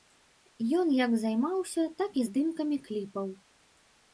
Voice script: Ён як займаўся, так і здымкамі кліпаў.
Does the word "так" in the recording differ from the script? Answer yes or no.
no